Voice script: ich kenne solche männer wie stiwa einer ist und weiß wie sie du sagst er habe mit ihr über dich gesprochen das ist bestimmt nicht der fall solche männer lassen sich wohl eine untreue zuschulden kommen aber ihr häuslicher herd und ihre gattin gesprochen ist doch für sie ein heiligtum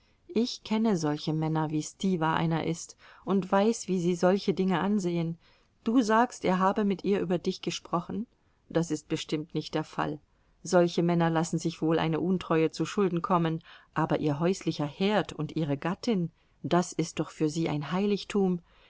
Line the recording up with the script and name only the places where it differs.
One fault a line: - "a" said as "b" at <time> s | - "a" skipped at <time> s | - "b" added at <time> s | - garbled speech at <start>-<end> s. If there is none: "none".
- "solche dinge ansehen" added at 4.2 s
- "gesprochen" said as "das" at 16.6 s